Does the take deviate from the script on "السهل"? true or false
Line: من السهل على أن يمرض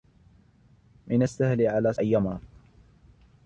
false